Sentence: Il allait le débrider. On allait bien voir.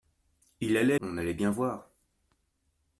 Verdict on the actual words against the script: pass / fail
fail